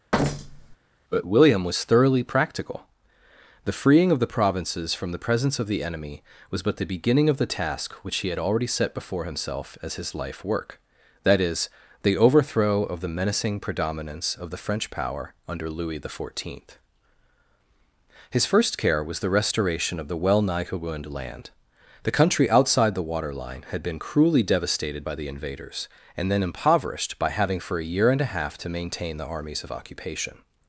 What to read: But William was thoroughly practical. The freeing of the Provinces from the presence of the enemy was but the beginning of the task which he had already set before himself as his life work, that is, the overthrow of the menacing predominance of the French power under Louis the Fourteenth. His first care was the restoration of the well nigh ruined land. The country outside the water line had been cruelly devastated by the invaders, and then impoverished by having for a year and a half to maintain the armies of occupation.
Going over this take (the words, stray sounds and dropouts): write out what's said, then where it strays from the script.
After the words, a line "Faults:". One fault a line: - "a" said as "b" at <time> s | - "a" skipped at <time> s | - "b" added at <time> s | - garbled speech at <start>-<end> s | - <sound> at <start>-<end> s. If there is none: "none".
But William was thoroughly practical. The freeing of the Provinces from the presence of the enemy was but the beginning of the task which he had already set before himself as his life work, that is, the overthrow of the menacing predominance of the French power under Louis the Fourteenth. His first care was the restoration of the well nigh ruined land. The country outside the water line had been cruelly devastated by the invaders, and then impoverished by having for a year and a half to maintain the armies of occupation.
Faults:
- thud at 0.1-0.8 s